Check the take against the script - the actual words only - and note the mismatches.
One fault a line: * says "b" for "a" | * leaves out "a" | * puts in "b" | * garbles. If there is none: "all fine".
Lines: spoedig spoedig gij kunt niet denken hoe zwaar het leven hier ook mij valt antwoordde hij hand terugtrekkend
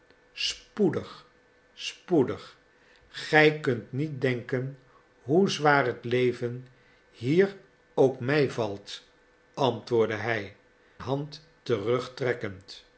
all fine